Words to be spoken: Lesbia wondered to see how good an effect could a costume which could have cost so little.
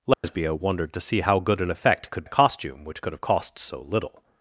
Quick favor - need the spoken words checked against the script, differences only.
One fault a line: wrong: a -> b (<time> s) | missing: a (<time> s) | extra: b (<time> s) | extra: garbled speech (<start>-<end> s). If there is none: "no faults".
no faults